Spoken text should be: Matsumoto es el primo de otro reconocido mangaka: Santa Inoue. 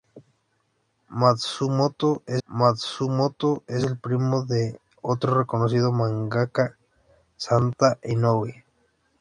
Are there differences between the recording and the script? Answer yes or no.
yes